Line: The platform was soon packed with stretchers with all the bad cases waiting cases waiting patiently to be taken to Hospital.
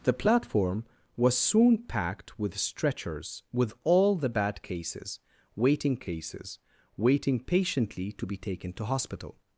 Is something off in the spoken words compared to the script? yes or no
no